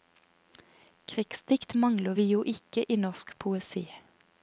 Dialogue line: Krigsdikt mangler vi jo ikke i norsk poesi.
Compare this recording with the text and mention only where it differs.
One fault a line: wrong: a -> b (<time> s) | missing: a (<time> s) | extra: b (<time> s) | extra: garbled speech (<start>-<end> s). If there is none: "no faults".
no faults